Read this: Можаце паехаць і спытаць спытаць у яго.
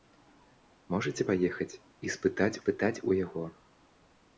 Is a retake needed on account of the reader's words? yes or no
no